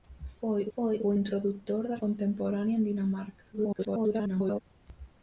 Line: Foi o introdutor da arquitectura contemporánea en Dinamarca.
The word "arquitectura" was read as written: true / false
false